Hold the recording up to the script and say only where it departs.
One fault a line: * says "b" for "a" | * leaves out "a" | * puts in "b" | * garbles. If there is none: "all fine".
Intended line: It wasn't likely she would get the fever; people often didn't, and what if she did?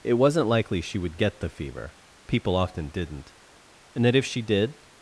* says "that" for "what"